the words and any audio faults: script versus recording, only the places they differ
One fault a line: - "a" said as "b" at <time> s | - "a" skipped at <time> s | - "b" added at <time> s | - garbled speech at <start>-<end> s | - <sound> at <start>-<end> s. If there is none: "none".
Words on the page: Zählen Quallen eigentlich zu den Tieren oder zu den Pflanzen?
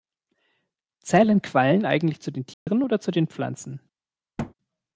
- dropout at 2.5-2.7 s
- thud at 4.4-4.5 s